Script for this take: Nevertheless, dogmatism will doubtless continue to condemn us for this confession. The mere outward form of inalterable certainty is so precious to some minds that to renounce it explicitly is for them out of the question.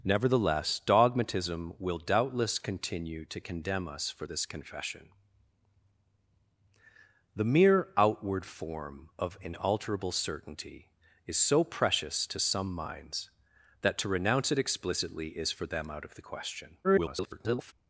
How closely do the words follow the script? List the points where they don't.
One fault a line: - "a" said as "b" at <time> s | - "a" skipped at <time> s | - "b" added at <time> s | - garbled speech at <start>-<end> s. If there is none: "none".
- garbled speech at 16.8-17.7 s